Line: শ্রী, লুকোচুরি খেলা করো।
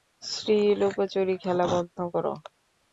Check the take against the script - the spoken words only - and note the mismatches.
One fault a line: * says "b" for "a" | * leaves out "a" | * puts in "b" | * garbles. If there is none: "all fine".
* puts in "বন্ধ"